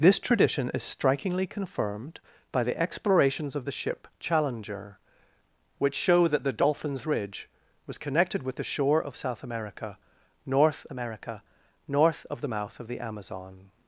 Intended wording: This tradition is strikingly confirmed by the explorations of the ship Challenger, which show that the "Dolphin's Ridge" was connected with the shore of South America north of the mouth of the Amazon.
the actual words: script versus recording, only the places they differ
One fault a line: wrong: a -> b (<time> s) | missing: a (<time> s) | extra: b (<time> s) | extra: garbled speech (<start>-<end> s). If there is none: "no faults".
extra: America north (10.9 s)